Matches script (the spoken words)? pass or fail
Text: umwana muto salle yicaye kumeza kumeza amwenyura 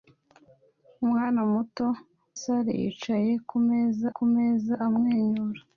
pass